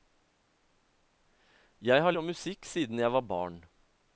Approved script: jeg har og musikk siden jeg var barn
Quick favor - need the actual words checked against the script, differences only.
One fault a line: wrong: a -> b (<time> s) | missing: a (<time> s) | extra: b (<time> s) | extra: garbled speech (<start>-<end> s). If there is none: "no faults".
no faults